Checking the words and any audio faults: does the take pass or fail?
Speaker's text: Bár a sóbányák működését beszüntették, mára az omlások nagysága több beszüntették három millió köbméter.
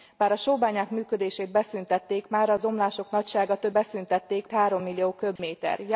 fail